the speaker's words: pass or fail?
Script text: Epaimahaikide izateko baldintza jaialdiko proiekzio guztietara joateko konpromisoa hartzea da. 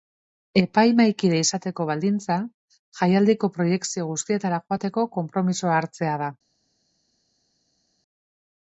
pass